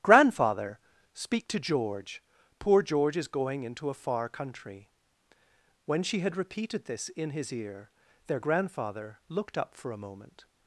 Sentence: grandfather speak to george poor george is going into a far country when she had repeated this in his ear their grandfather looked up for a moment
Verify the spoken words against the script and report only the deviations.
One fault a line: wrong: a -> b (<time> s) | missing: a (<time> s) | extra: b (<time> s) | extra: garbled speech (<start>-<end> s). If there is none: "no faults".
no faults